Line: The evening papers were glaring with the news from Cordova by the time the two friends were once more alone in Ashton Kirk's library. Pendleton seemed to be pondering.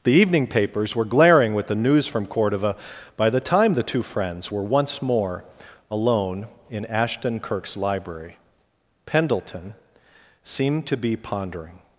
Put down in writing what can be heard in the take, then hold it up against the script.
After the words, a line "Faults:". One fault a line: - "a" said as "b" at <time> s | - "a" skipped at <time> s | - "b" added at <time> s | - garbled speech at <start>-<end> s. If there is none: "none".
The evening papers were glaring with the news from Cordova by the time the two friends were once more alone in Ashton Kirk's library. Pendleton seemed to be pondering.
Faults:
none